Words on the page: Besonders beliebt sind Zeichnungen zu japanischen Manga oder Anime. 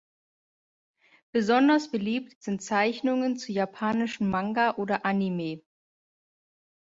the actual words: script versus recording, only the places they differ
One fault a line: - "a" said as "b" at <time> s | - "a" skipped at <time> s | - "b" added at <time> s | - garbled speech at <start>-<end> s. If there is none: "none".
none